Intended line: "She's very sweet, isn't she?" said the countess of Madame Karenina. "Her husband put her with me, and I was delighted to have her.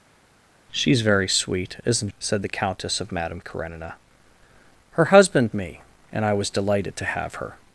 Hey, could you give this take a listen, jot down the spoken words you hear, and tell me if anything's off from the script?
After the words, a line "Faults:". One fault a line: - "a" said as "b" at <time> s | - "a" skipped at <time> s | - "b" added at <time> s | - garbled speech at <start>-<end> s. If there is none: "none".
"She's very sweet, isn't?" said the countess of Madame Karenina. "Her husband me, and I was delighted to have her.
Faults:
- "she" skipped at 2.1 s
- "put her with" skipped at 5.5 s